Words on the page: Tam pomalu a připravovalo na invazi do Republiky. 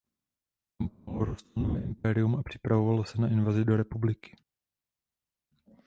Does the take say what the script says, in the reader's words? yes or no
no